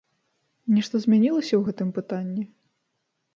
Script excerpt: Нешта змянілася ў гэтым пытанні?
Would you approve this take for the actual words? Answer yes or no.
yes